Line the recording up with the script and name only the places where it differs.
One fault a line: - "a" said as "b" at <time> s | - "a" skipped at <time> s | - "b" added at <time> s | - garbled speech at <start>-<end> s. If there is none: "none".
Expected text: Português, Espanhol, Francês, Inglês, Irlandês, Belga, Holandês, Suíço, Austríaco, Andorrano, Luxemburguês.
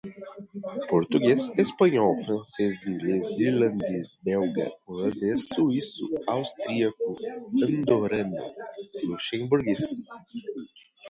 none